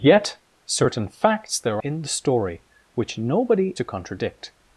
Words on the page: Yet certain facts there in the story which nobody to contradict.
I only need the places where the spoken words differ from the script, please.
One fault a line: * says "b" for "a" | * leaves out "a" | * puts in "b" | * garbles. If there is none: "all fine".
all fine